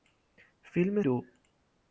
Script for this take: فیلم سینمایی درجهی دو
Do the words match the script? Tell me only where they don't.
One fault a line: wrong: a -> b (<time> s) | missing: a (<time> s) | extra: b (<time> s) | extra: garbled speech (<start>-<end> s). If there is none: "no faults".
missing: سینمایی درجهی (1.0 s)